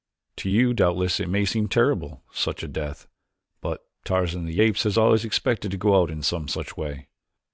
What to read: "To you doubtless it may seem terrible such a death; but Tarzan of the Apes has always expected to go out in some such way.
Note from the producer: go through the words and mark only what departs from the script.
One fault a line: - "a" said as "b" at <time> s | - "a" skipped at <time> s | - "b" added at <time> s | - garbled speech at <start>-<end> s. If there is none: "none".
none